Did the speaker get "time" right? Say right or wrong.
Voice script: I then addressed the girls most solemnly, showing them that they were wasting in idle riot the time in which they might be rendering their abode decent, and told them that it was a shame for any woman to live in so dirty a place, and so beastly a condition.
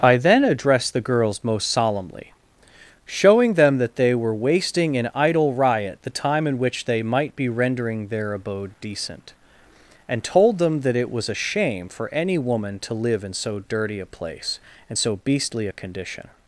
right